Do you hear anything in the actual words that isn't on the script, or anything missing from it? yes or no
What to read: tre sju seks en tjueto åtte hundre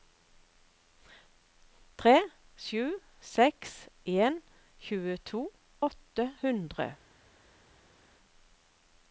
no